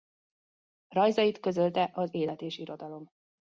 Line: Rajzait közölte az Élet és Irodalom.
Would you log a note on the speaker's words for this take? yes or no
no